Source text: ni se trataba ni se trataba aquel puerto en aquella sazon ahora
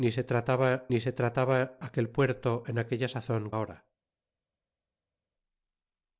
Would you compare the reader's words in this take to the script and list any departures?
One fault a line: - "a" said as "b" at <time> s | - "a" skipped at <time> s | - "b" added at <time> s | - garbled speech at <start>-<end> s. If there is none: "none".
none